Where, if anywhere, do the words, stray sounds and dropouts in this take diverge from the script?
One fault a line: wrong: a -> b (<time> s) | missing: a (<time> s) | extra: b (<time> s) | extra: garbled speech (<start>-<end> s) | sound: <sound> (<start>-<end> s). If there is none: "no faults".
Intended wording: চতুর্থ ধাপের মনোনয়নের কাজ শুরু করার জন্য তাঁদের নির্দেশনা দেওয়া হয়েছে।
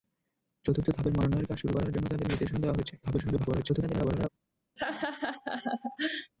extra: garbled speech (3.0-4.3 s)
sound: laugh (4.8-6.3 s)